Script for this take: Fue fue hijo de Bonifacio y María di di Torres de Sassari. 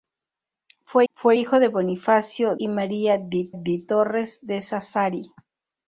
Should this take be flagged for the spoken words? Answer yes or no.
no